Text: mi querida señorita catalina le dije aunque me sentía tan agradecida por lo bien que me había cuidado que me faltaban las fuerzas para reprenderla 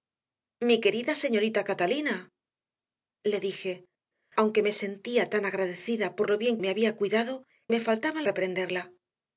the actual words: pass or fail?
fail